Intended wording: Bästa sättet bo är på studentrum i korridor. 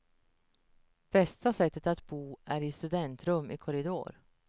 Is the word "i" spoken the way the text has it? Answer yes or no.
yes